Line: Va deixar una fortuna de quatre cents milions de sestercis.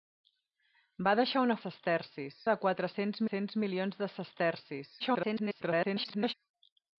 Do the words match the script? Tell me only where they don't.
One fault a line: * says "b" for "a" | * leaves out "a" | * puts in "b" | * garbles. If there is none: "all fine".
* says "sestercis" for "fortuna"
* puts in "cents"
* garbles